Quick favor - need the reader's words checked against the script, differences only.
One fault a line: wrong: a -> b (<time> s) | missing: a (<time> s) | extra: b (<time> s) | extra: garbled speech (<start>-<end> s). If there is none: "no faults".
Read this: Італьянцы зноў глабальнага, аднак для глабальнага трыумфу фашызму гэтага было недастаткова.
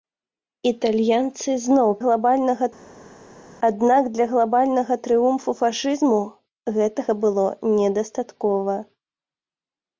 no faults